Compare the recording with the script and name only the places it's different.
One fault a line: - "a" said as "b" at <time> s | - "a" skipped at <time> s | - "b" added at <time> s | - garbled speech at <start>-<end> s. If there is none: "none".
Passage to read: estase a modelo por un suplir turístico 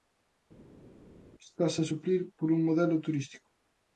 - "modelo" said as "suplir" at 1.9 s
- "suplir" said as "modelo" at 2.7 s